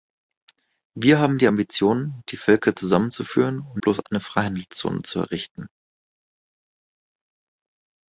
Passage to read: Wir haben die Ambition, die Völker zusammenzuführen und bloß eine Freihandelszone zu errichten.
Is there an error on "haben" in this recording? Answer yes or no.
no